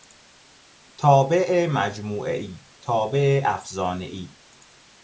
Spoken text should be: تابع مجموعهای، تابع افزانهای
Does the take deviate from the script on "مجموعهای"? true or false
false